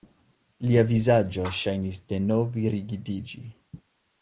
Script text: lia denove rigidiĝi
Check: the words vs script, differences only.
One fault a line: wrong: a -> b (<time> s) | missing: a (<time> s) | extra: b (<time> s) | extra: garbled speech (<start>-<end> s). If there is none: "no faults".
extra: vizaĝo ŝajnis (0.9 s)